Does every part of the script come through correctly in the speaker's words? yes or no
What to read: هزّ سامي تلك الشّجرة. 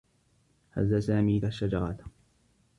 no